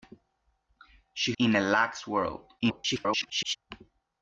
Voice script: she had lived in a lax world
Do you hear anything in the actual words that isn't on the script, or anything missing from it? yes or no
yes